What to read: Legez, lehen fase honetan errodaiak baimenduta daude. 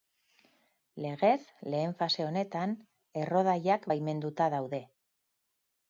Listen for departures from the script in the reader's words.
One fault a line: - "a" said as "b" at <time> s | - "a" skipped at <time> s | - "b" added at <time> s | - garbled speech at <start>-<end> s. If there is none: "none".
none